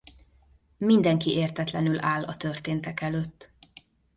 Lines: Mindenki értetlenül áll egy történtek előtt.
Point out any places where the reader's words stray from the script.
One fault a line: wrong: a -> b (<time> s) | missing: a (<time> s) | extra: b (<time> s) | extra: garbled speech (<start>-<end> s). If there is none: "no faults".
wrong: egy -> a (2.2 s)